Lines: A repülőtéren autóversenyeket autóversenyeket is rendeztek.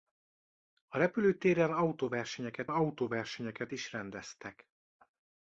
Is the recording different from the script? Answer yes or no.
no